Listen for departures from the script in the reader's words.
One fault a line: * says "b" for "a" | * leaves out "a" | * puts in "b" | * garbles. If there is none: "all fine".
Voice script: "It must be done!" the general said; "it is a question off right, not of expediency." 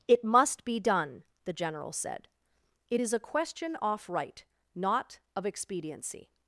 all fine